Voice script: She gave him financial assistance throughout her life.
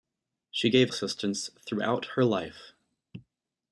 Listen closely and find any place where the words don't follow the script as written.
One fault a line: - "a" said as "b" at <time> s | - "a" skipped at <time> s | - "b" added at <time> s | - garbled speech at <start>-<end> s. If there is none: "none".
- "him financial" skipped at 0.9 s